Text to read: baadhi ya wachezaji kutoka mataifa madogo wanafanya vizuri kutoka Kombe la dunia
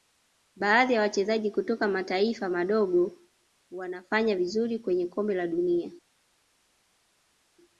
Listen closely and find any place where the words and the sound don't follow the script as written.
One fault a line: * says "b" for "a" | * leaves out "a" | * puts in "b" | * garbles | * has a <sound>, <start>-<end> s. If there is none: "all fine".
* says "kwenye" for "kutoka"